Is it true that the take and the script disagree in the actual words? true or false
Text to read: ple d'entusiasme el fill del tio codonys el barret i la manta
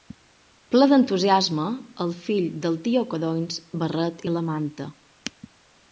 false